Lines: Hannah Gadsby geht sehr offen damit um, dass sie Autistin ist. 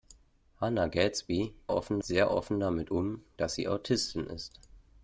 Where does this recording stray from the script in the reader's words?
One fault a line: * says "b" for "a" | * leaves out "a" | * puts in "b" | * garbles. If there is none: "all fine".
* says "offen" for "geht"